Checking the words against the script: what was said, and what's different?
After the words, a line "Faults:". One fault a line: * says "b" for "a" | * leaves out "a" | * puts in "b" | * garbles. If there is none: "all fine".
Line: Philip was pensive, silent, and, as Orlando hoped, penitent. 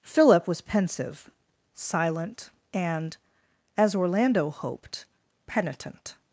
Philip was pensive, silent, and, as Orlando hoped, penitent.
Faults:
all fine